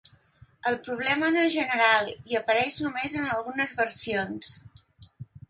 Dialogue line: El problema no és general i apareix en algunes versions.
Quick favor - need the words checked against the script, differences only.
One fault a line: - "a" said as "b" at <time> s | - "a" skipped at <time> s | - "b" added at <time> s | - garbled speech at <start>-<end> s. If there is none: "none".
- "només" added at 2.9 s